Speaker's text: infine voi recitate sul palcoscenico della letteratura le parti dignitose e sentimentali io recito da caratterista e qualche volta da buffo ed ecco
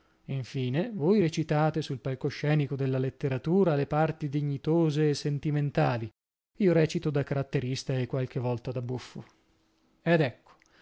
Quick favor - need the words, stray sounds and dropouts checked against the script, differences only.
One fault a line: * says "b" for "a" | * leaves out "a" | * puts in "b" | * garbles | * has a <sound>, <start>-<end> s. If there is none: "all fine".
all fine